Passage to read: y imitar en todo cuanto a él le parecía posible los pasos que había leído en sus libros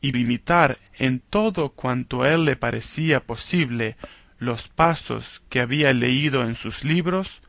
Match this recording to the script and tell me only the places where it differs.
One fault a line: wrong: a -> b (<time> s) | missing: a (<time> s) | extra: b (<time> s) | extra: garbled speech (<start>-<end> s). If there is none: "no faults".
no faults